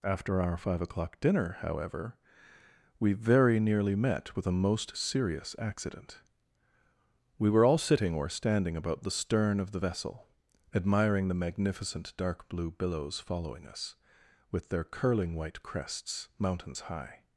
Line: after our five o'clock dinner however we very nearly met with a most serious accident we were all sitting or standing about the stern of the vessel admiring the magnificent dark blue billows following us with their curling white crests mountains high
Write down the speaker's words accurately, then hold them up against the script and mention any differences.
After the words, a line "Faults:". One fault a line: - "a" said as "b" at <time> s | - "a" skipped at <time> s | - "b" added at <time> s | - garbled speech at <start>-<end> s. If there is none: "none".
after our five o'clock dinner however we very nearly met with a most serious accident we were all sitting or standing about the stern of the vessel admiring the magnificent dark blue billows following us with their curling white crests mountains high
Faults:
none